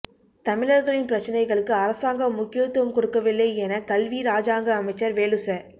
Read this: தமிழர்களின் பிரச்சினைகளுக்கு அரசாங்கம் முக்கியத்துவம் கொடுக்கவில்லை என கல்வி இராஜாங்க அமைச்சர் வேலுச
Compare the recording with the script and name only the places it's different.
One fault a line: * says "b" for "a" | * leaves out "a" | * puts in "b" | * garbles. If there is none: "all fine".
all fine